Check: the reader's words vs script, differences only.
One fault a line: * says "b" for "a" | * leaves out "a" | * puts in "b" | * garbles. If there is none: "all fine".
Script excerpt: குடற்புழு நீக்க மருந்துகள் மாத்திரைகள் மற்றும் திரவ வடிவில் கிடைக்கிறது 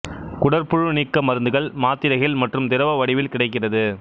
all fine